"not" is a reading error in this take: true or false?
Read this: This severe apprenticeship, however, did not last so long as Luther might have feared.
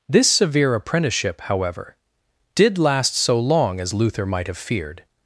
true